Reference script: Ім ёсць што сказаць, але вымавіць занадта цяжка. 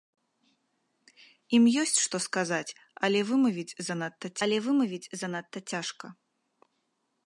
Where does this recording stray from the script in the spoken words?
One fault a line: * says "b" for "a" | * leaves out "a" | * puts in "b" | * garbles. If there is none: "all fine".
* puts in "але вымавіць занадта"